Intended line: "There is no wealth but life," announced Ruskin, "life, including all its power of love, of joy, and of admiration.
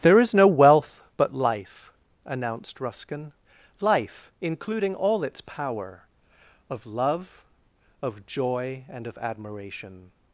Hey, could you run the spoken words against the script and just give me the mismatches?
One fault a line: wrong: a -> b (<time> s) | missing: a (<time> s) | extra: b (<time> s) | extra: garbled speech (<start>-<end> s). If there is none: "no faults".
no faults